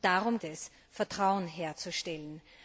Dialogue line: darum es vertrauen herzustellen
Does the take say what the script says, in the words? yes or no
yes